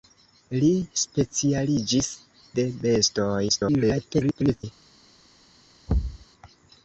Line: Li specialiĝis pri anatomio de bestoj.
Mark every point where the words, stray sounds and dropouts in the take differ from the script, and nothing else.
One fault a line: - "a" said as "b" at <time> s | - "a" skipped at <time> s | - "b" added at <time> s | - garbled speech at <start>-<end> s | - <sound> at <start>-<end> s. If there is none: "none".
- "pri anatomio" skipped at 2.1 s
- garbled speech at 3.5-4.6 s
- thud at 5.9-6.3 s